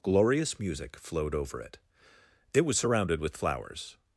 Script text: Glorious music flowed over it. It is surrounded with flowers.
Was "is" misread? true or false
true